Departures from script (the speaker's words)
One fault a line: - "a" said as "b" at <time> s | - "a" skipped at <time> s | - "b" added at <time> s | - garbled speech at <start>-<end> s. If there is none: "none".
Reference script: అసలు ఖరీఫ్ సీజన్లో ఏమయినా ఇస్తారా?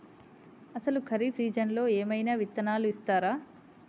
- "విత్తనాలు" added at 2.3 s